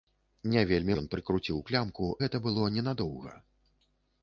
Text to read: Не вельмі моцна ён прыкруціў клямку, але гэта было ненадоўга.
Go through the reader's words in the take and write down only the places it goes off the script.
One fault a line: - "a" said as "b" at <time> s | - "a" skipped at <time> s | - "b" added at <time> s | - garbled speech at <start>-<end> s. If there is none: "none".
- "моцна" skipped at 0.9 s
- "але" skipped at 2.1 s